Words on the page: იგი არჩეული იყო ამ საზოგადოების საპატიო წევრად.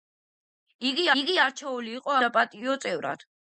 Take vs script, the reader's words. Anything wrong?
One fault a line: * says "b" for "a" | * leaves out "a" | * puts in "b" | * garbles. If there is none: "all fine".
* puts in "იგი"
* leaves out "ამ საზოგადოების"